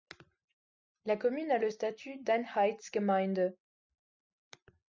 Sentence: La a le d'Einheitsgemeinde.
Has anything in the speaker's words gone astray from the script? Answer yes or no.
yes